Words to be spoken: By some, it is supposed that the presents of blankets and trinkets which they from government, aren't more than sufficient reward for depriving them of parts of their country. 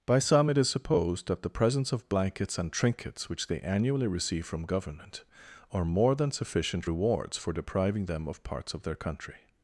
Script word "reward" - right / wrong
wrong